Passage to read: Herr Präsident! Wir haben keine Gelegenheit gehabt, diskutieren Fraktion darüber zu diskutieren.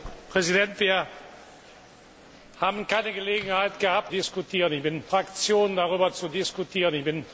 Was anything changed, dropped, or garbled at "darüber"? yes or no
no